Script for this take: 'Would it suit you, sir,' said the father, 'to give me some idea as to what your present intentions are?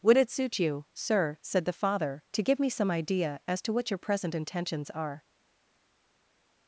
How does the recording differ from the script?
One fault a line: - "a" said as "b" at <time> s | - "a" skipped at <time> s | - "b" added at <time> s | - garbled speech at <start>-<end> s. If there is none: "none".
none